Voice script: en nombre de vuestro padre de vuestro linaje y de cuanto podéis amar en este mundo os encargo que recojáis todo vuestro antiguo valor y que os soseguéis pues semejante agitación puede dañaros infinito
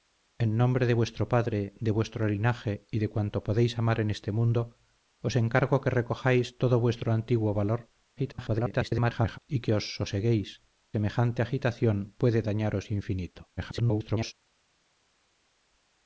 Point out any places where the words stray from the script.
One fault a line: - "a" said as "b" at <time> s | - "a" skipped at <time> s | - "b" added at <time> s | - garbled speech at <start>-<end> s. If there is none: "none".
- garbled speech at 8.2-9.4 s
- "pues" skipped at 10.6 s
- garbled speech at 13.6-14.3 s